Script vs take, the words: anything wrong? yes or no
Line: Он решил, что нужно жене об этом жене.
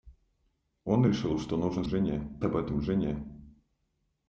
no